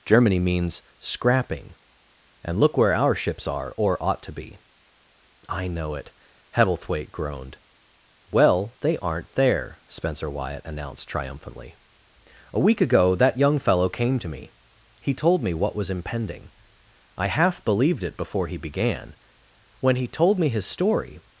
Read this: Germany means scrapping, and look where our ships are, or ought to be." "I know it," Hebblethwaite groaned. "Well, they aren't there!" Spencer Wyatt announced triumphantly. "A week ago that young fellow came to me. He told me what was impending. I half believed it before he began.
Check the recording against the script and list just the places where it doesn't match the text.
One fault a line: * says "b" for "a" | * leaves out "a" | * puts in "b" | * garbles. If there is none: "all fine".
* puts in "When he told me his story"